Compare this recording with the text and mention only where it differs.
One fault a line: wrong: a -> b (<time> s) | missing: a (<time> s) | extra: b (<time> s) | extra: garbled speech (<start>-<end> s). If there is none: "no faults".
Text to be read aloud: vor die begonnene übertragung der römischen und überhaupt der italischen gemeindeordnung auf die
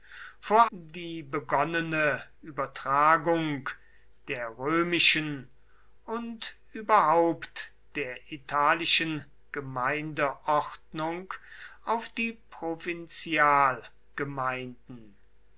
no faults